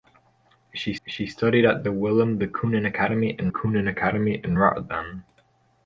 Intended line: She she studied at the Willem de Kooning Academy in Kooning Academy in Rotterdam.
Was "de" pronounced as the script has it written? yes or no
yes